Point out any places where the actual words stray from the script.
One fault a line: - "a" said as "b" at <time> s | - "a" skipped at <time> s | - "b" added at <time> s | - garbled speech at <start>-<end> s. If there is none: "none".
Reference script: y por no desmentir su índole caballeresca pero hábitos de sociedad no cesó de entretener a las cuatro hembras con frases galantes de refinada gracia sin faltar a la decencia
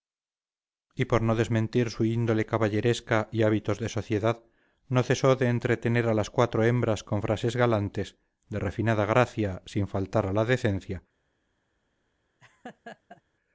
- "pero" said as "y" at 3.3 s